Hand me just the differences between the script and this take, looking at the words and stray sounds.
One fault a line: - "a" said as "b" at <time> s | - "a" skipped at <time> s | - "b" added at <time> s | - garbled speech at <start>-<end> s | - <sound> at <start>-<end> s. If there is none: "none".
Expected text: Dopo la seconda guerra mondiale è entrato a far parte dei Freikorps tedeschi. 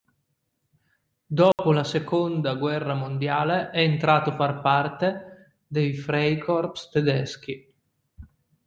- dropout at 1.5-1.6 s